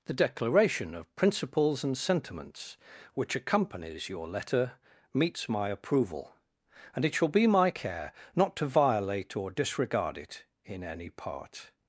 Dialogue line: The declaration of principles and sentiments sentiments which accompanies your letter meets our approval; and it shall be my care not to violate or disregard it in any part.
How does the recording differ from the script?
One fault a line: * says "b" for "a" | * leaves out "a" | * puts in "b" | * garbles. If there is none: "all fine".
* leaves out "sentiments"
* says "my" for "our"